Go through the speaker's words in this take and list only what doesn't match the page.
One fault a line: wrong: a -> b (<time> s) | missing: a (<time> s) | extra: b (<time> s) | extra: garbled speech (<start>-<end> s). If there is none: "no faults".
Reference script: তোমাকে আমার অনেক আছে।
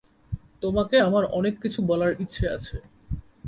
extra: কিছু বলার ইচ্ছে (1.6 s)